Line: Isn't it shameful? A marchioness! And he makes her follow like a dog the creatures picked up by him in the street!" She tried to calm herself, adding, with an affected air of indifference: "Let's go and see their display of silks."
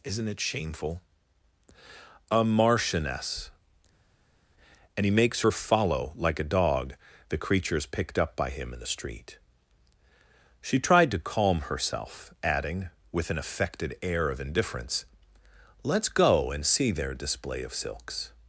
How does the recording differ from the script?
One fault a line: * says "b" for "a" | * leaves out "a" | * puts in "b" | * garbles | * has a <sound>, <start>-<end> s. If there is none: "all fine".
all fine